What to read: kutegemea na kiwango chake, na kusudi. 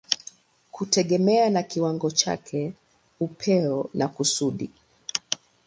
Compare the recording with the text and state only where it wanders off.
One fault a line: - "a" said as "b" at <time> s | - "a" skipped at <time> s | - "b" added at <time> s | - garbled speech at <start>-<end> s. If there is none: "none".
- "upeo" added at 3.2 s